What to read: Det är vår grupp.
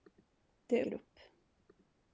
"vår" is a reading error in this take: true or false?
true